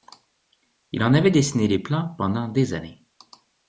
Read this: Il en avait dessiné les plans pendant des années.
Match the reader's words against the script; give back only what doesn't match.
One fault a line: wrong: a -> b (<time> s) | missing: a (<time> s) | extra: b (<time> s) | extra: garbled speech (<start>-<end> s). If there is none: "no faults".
no faults